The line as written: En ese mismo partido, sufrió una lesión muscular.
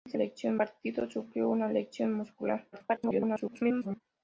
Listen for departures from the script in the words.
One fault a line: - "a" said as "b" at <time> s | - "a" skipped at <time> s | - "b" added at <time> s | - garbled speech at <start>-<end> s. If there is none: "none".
- "mismo" said as "lesión" at 0.1 s
- garbled speech at 2.7-4.0 s